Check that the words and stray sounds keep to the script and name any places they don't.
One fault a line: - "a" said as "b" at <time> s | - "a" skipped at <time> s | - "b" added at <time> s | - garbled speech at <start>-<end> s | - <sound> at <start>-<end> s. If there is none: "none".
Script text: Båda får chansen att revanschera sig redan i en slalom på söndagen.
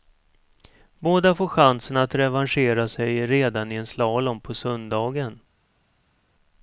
none